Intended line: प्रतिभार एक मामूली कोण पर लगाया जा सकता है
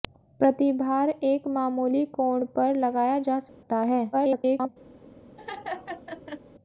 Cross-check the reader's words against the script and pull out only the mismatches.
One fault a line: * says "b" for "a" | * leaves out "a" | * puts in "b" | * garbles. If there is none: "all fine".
* garbles